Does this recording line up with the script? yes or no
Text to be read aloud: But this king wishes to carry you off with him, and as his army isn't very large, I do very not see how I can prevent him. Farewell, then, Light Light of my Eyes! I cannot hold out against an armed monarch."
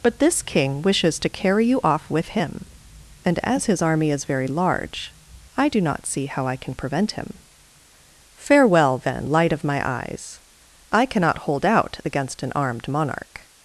no